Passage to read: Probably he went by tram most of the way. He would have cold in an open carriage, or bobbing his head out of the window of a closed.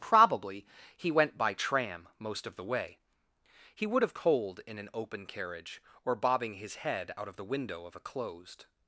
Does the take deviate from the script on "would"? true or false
false